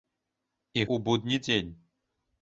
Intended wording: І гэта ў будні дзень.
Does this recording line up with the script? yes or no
no